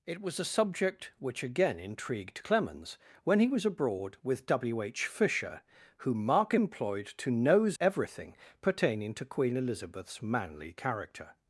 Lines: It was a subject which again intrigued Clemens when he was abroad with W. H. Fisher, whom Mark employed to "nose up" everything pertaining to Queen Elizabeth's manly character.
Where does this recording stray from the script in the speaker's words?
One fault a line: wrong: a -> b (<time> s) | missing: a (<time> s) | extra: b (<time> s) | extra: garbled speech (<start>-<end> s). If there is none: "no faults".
missing: up (7.8 s)